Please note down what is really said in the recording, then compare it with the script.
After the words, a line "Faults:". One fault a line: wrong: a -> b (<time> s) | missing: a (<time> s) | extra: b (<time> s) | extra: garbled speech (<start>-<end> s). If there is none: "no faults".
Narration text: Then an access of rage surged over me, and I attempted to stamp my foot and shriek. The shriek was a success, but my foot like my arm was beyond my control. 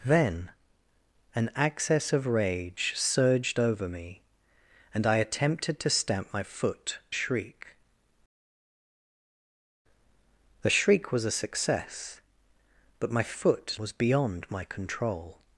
Then an access of rage surged over me, and I attempted to stamp my foot shriek. The shriek was a success, but my foot was beyond my control.
Faults:
missing: and (7.0 s)
missing: like my arm (13.8 s)